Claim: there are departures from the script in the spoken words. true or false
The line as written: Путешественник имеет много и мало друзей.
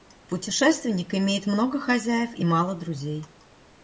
true